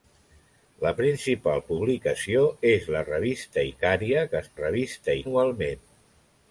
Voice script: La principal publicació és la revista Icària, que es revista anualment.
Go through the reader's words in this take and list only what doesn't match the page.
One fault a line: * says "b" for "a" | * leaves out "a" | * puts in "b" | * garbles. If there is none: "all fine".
all fine